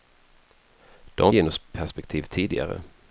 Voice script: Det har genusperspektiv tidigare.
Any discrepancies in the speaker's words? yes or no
no